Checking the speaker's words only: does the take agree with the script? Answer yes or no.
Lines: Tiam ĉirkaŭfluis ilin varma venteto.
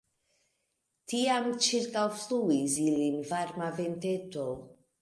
yes